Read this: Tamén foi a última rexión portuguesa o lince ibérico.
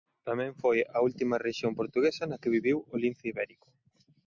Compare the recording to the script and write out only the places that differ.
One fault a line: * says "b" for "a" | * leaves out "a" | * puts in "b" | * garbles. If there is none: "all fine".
* puts in "na que viviu"